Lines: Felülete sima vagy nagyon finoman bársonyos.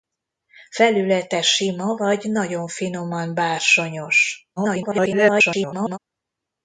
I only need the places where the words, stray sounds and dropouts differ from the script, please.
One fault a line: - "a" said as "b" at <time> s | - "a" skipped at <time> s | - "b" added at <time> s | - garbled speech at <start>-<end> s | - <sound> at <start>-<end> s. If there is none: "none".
- garbled speech at 4.6-6.0 s